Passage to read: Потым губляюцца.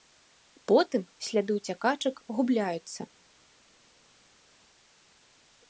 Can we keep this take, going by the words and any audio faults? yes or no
no